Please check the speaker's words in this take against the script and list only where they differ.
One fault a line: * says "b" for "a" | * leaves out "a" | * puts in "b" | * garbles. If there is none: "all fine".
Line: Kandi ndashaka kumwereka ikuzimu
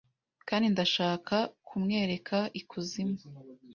all fine